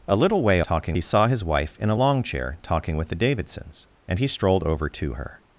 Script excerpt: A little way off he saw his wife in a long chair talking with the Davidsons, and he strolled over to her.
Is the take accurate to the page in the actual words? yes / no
no